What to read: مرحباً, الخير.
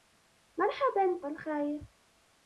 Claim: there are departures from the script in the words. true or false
false